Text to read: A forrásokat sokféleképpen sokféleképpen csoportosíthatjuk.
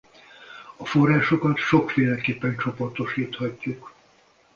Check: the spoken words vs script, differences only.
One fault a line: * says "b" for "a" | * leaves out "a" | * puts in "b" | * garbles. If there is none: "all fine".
* leaves out "sokféleképpen"